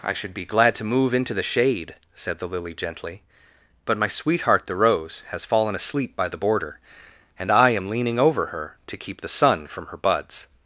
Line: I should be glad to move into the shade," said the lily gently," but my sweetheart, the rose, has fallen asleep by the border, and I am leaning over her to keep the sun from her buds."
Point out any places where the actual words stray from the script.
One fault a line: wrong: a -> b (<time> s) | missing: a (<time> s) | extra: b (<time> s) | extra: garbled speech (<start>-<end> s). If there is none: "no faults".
no faults